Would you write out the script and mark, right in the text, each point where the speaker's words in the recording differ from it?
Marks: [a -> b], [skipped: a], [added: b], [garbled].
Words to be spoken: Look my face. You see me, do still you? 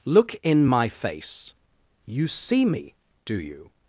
Look [added: in] my face. You see me, do [skipped: still] you?